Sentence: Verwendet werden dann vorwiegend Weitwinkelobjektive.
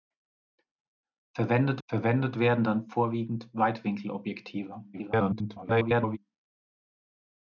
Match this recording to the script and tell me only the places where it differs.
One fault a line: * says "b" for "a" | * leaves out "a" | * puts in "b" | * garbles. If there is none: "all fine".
* puts in "verwendet"
* garbles